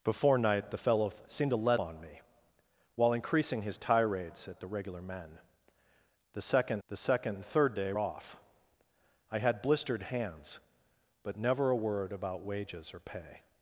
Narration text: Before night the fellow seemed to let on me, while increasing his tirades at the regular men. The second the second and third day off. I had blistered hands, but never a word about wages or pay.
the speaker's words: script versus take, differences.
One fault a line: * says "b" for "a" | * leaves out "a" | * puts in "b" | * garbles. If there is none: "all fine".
all fine